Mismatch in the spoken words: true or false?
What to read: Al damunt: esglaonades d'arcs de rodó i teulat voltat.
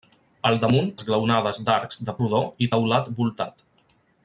false